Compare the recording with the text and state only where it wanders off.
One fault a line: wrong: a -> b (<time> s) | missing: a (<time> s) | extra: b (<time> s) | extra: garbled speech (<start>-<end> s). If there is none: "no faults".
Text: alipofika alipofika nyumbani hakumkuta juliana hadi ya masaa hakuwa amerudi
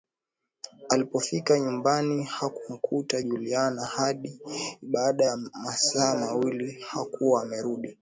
missing: alipofika (1.6 s)
extra: baada (4.8 s)
extra: mawili (6.1 s)